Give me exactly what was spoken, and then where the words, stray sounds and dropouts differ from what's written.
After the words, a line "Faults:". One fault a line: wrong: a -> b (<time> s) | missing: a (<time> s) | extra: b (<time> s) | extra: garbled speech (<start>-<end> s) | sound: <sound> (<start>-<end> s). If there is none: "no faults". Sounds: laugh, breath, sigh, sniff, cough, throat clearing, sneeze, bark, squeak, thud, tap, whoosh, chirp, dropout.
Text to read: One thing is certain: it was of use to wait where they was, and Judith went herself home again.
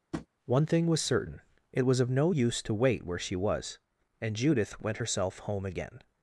One thing was certain: it was of no use to wait where she was, and Judith went herself home again.
Faults:
sound: tap (0.1-0.3 s)
wrong: is -> was (0.9 s)
extra: no (2.1 s)
wrong: they -> she (3.2 s)